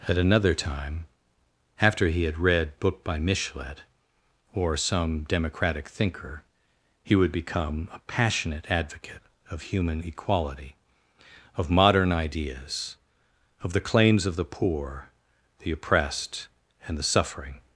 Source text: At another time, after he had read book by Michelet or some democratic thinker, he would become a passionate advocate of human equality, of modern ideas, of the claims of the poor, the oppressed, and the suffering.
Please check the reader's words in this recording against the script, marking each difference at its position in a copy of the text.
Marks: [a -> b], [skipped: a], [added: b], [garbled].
At another time, after he had read book by Michelet or some democratic thinker, he would become a passionate advocate of human equality, of modern ideas, of the claims of the poor, the oppressed, and the suffering.